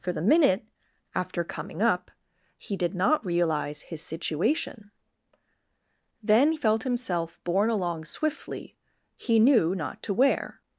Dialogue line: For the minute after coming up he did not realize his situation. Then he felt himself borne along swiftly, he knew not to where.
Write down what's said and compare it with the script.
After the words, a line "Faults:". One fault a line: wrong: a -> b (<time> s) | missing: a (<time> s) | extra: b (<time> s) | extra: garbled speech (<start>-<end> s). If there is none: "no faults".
For the minute after coming up he did not realize his situation. Then felt himself borne along swiftly, he knew not to where.
Faults:
missing: he (6.5 s)